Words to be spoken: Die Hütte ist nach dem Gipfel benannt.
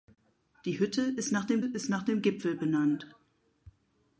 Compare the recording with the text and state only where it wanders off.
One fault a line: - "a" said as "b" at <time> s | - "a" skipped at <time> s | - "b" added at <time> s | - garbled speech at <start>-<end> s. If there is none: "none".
- "ist nach dem" added at 1.6 s